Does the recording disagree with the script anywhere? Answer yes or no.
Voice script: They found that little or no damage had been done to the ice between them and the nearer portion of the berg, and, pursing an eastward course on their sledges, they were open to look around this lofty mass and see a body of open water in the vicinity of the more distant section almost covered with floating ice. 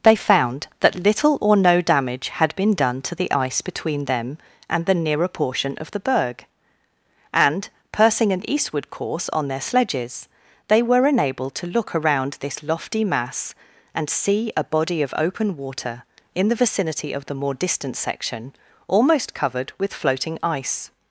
yes